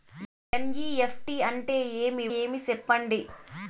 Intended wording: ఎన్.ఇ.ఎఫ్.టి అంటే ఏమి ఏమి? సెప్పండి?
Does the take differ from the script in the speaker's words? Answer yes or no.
no